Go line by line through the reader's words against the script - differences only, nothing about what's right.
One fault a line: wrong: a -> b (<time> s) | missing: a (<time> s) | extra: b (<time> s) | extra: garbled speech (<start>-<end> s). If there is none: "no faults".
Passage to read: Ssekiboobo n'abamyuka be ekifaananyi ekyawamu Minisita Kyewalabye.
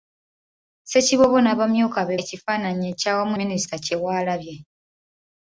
no faults